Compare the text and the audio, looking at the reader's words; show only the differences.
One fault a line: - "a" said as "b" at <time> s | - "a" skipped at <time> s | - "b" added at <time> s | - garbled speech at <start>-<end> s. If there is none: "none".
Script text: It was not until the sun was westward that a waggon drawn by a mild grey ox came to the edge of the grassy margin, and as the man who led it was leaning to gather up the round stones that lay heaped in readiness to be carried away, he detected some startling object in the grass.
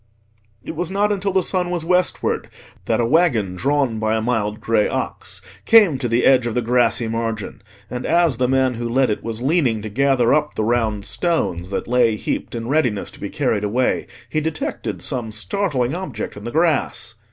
none